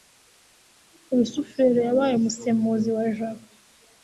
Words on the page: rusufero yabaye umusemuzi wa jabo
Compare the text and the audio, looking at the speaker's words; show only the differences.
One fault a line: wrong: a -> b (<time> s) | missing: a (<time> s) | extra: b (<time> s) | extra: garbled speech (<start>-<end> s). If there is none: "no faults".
no faults